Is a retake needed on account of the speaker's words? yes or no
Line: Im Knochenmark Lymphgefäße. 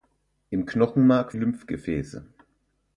no